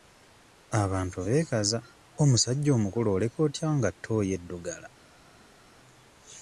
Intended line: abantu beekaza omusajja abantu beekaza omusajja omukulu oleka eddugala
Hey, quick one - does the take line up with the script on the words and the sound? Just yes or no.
no